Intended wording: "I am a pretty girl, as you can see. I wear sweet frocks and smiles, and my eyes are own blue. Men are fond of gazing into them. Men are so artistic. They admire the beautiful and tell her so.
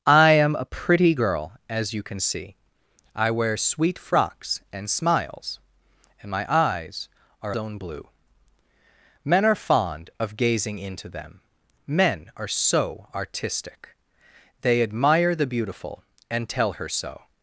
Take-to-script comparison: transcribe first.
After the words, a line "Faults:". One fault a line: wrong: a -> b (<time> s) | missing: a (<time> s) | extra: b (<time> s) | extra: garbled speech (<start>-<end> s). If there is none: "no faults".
"I am a pretty girl, as you can see. I wear sweet frocks and smiles, and my eyes are own blue. Men are fond of gazing into them. Men are so artistic. They admire the beautiful and tell her so.
Faults:
no faults